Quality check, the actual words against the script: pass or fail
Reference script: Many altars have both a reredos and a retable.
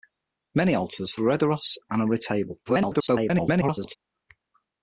fail